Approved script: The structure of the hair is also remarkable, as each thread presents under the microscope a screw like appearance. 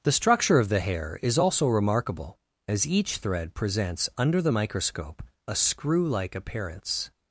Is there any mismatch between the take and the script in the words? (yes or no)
no